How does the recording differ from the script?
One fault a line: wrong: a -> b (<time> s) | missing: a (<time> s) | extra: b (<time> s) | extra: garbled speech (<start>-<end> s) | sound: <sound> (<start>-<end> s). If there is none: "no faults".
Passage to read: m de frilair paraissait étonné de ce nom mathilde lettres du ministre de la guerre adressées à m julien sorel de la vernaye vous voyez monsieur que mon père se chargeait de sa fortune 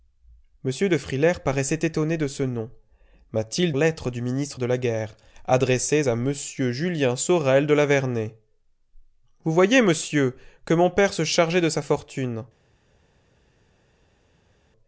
no faults